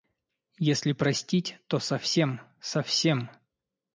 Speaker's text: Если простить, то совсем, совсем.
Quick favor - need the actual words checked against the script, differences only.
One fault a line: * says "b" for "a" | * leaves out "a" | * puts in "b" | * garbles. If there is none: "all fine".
all fine